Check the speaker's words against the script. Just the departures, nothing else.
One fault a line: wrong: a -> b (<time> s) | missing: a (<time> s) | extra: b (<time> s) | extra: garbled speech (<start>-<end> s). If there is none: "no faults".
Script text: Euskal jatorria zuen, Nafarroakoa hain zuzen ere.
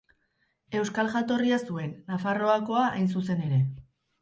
no faults